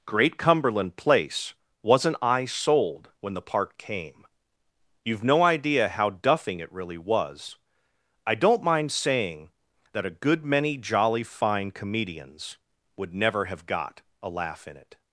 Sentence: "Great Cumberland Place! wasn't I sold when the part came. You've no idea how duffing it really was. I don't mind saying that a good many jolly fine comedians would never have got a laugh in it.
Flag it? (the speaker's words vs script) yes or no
no